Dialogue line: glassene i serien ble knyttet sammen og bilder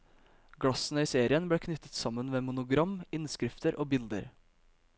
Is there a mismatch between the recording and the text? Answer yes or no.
yes